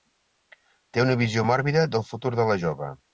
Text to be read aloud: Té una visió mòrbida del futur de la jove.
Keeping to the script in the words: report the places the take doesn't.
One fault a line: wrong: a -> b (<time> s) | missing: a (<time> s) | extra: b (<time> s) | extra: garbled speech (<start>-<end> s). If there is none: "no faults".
no faults